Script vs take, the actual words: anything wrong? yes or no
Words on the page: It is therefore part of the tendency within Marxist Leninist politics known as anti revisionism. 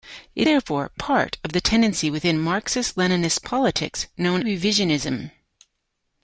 yes